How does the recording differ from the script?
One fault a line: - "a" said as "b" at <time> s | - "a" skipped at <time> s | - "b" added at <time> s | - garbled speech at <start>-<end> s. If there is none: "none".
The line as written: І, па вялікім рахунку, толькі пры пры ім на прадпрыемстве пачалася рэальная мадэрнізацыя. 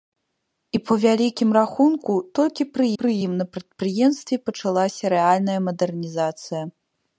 none